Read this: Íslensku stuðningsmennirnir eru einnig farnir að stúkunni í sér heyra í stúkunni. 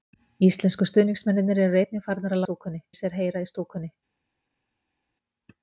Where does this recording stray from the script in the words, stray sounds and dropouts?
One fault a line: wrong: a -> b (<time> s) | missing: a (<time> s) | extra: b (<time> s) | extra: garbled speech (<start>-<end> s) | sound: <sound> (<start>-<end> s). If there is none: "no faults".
no faults